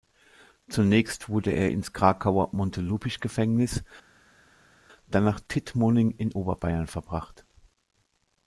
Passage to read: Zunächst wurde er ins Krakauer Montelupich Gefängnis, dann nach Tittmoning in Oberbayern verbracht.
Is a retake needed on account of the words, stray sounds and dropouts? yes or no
no